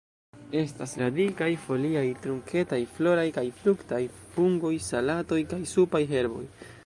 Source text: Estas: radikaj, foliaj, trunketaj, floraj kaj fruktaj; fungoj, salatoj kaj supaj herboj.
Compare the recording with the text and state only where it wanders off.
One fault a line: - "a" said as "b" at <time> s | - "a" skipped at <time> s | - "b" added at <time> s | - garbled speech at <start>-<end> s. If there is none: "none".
none